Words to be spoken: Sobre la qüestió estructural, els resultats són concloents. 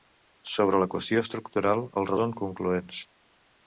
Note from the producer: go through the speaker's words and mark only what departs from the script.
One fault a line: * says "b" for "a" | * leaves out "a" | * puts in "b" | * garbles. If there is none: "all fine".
* leaves out "resultats"